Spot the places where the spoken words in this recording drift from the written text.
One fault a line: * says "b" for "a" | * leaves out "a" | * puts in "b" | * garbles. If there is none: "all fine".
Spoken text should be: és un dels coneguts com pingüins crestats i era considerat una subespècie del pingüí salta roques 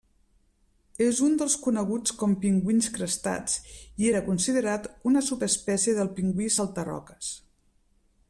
all fine